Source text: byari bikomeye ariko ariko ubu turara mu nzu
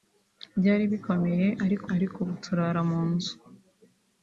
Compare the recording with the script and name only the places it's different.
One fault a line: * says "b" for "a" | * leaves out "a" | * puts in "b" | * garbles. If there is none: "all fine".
all fine